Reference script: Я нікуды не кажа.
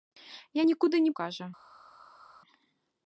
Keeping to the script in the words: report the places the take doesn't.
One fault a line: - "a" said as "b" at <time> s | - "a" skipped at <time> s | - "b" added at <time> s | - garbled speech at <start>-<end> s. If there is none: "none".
none